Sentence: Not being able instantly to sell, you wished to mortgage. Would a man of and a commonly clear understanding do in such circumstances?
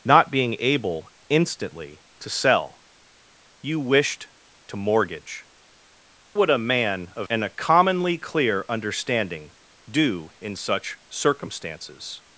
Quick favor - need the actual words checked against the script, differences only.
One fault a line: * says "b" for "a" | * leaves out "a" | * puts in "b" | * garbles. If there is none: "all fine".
all fine